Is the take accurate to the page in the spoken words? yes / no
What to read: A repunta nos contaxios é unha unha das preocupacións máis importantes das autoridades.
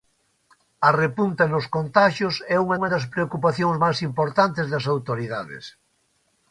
yes